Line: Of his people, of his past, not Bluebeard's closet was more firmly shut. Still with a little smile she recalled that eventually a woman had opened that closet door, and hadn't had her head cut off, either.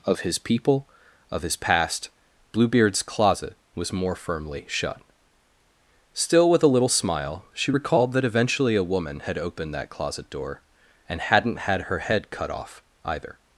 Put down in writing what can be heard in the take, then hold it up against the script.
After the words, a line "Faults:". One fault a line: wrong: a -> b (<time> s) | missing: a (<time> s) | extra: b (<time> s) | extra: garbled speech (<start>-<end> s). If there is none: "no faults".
Of his people, of his past, Bluebeard's closet was more firmly shut. Still with a little smile she recalled that eventually a woman had opened that closet door, and hadn't had her head cut off, either.
Faults:
missing: not (2.1 s)